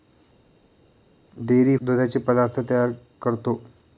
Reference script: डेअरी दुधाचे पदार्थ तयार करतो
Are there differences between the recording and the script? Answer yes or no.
no